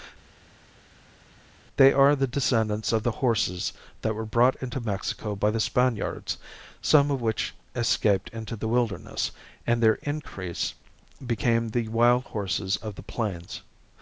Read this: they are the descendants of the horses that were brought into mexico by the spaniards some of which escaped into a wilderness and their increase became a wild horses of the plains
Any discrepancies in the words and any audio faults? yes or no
yes